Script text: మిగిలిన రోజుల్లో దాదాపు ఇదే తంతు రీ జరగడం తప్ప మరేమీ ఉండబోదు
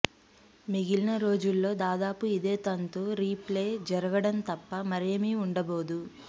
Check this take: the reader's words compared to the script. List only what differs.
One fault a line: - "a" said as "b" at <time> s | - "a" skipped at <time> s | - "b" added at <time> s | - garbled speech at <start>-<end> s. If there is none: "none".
- "ప్లే" added at 3.4 s